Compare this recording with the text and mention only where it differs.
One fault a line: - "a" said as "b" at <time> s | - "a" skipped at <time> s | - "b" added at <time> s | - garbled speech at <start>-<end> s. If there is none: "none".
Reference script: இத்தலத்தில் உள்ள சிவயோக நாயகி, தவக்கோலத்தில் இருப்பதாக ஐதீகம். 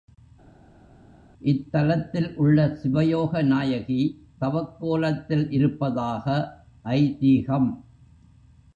none